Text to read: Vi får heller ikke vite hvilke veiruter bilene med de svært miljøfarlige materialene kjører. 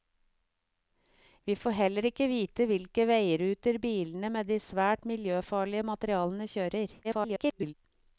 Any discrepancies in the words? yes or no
yes